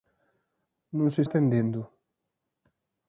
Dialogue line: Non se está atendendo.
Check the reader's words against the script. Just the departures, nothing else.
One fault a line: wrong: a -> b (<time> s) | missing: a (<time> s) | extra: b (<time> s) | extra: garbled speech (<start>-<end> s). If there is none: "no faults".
missing: está (1.2 s)